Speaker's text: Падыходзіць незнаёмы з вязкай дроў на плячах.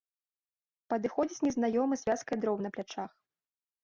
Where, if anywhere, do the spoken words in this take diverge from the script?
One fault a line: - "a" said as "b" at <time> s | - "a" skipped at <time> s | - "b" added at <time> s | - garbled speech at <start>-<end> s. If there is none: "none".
none